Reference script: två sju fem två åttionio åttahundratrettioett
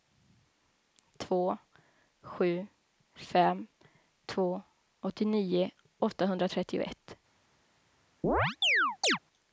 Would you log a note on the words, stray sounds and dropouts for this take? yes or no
yes